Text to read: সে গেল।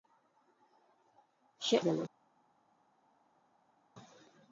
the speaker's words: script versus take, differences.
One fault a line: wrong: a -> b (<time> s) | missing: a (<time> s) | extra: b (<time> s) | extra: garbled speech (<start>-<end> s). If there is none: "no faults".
no faults